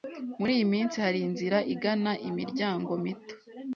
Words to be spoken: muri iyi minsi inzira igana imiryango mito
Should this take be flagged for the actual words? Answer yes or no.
yes